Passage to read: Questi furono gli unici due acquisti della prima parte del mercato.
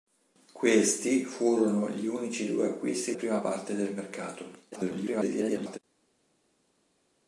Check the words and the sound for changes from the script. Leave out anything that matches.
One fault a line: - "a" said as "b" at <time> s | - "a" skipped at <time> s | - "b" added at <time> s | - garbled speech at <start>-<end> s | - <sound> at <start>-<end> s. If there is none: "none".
- "della" skipped at 3.1 s
- garbled speech at 4.7-5.8 s